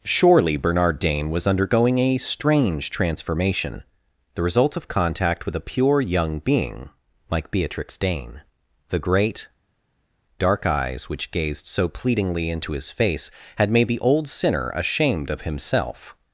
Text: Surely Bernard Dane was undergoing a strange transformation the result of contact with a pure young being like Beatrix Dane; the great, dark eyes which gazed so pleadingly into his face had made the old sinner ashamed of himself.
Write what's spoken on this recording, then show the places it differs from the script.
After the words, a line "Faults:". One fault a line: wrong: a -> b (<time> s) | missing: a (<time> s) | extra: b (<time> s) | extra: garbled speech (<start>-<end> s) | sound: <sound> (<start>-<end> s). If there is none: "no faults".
Surely Bernard Dane was undergoing a strange transformation the result of contact with a pure young being like Beatrix Dane; the great, dark eyes which gazed so pleadingly into his face had made the old sinner ashamed of himself.
Faults:
no faults